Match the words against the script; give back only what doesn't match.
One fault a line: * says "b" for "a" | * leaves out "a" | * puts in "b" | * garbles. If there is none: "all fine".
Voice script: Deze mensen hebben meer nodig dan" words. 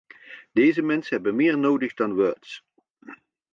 all fine